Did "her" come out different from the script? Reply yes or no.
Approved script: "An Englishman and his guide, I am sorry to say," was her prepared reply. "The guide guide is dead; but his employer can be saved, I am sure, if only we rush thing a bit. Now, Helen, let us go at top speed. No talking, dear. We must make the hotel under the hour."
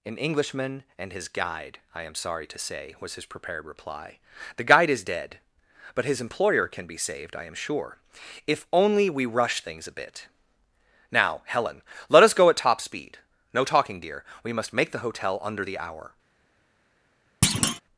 yes